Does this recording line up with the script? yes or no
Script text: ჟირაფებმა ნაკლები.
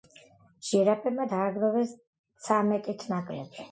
no